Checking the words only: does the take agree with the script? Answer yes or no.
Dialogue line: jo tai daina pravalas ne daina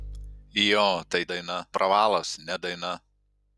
yes